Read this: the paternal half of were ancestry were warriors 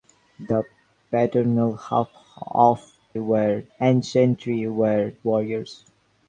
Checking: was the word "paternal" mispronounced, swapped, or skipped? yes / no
no